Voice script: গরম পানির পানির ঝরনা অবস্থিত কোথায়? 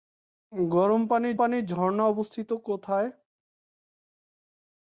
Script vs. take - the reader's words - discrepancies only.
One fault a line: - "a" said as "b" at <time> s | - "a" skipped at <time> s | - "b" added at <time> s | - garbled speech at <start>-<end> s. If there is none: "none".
none